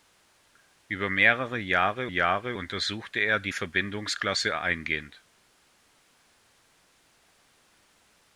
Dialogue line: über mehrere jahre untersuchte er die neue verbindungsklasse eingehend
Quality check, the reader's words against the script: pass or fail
fail